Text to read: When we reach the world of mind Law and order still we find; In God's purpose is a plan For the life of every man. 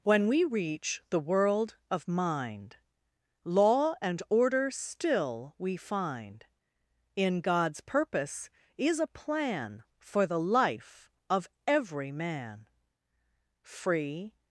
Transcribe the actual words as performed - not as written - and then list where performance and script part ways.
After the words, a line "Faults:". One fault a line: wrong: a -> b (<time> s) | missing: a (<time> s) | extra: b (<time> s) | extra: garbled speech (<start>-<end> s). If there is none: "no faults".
When we reach the world of mind Law and order still we find; In God's purpose is a plan For the life of every man. Free
Faults:
extra: Free (13.6 s)